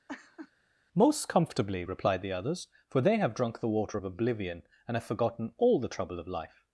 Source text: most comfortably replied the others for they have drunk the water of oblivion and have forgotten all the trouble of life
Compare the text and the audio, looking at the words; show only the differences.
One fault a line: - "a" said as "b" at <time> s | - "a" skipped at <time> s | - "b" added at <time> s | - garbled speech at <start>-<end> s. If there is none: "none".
none